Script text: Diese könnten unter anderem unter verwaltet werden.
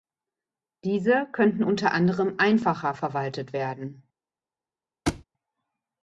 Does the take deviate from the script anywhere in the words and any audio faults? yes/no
yes